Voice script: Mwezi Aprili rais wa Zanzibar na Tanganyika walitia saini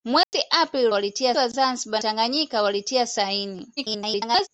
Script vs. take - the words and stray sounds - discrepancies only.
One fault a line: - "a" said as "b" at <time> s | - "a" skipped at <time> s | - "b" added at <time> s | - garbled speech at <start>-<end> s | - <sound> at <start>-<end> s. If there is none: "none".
- dropout at 0.2-0.3 s
- "rais" said as "walitia" at 0.9 s
- "na" skipped at 2.0 s
- garbled speech at 3.8-4.5 s